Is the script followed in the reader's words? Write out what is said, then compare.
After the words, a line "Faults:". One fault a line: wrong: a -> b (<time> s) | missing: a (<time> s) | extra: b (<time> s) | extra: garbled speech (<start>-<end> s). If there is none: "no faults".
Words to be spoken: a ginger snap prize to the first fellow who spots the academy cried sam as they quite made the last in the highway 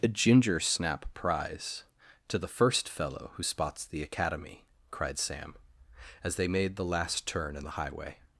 a ginger snap prize to the first fellow who spots the academy cried sam as they made the last turn in the highway
Faults:
missing: quite (6.5 s)
extra: turn (7.3 s)